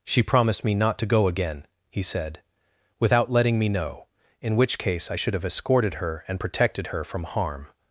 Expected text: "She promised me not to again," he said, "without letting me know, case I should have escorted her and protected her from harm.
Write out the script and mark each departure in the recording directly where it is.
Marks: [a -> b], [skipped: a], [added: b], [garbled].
"She promised me not to [added: go] again," he said, "without letting me know, [added: in which] case I should have escorted her and protected her from harm.